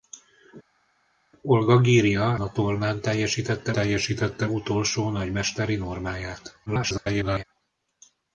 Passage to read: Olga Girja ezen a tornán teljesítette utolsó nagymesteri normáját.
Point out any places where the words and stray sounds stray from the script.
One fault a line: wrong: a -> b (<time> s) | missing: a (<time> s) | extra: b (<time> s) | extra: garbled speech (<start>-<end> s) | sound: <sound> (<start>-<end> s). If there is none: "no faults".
missing: ezen (2.4 s)
extra: teljesítette (3.7 s)
extra: garbled speech (6.7-7.4 s)